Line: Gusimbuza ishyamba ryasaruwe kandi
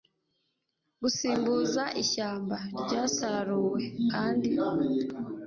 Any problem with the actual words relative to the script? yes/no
no